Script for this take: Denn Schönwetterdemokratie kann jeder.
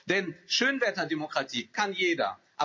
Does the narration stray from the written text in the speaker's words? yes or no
no